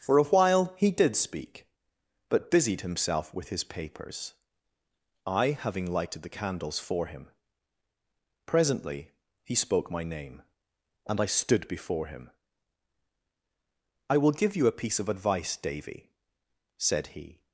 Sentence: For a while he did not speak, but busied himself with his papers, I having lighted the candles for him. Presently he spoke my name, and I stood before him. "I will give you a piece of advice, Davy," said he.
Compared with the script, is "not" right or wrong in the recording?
wrong